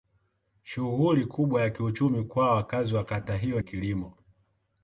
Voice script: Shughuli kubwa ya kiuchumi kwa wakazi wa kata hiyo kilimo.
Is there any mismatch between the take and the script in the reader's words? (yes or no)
no